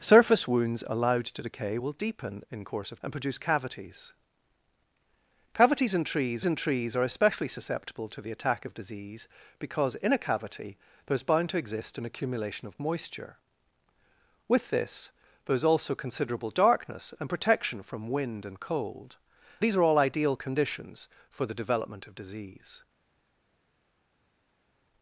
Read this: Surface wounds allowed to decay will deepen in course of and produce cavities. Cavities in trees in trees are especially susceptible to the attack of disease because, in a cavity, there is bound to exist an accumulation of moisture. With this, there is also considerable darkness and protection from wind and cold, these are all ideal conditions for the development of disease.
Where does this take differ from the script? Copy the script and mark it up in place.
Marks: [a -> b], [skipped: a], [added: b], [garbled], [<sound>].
Surface wounds allowed to decay will deepen in course of and produce cavities. Cavities in trees in trees are especially susceptible to the attack of disease because, in a cavity, there is bound to exist an accumulation of moisture. With this, there is also considerable darkness and protection from wind and cold, these are all ideal conditions for the development of disease.